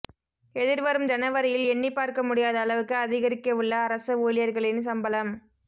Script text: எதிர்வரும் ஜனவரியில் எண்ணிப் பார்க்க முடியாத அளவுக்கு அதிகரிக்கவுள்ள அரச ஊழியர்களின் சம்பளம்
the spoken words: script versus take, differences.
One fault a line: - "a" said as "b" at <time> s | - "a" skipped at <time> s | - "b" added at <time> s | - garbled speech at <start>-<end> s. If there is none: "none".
none